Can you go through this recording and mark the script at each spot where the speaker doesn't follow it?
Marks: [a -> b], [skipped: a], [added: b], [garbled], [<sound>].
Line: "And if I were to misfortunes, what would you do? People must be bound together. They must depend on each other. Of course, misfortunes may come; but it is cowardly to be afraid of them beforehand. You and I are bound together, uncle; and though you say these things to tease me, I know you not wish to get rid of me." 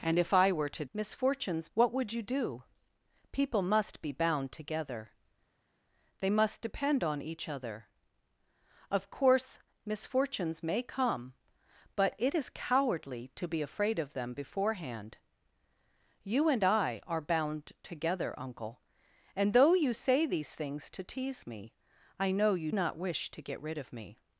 "And if I were to misfortunes, what would you do? People must be bound together. They must depend on each other. Of course, misfortunes may come; but it is cowardly to be afraid of them beforehand. You and I are bound together, uncle; and though you say these things to tease me, I know you not wish to get rid of me."